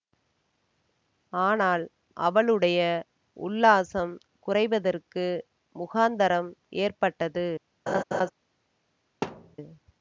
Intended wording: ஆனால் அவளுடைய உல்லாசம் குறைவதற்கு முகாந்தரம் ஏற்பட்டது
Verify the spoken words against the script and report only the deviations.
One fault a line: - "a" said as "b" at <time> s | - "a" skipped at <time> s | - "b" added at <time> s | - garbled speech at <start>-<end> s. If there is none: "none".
none